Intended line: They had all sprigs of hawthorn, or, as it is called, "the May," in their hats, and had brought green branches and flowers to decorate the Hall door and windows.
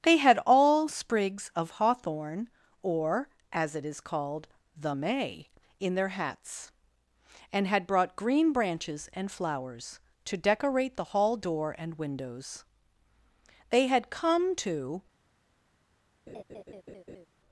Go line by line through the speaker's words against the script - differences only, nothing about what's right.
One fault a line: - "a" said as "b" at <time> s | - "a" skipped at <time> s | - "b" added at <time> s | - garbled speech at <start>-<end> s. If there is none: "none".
- "They had come to" added at 13.7 s